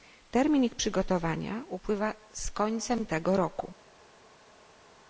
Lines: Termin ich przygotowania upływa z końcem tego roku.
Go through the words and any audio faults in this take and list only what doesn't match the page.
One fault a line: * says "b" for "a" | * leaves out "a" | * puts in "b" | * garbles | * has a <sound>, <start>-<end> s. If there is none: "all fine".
all fine